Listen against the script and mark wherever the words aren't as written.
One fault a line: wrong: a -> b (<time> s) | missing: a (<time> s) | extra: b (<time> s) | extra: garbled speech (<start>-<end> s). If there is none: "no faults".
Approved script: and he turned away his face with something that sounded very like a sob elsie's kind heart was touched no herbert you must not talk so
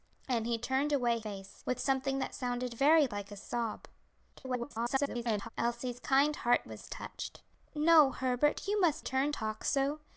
missing: his (1.2 s)
extra: garbled speech (4.3-5.5 s)
wrong: not -> turned (9.0 s)